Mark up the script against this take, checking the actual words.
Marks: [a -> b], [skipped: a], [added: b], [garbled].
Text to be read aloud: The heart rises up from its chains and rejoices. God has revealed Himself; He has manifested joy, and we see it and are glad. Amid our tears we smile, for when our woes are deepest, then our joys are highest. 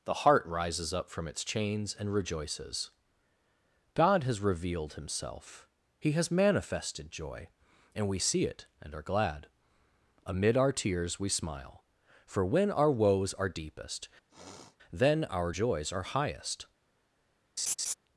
The heart rises up from its chains and rejoices. God has revealed Himself; He has manifested joy, and we see it and are glad. Amid our tears we smile, for when our woes are deepest, then our joys are highest.